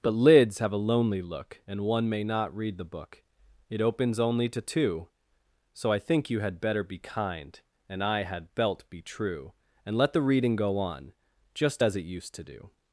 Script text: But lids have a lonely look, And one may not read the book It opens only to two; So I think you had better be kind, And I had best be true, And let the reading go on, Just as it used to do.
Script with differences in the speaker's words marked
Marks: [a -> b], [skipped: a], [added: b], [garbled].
But lids have a lonely look, And one may not read the book It opens only to two; So I think you had better be kind, And I had [best -> belt] be true, And let the reading go on, Just as it used to do.